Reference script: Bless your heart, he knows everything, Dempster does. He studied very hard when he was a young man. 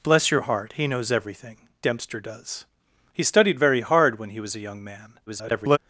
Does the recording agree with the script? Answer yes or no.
no